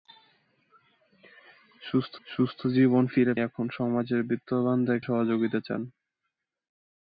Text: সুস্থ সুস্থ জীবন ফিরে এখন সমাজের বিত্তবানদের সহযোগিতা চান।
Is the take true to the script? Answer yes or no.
yes